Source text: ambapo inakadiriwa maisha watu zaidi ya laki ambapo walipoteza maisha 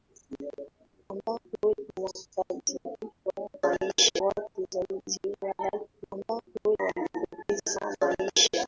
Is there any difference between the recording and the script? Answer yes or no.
no